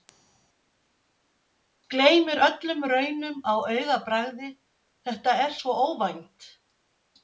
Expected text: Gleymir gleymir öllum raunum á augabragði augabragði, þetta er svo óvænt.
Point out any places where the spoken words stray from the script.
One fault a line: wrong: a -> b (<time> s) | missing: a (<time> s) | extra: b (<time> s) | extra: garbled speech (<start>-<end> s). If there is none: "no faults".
missing: gleymir (2.4 s)
missing: augabragði (4.5 s)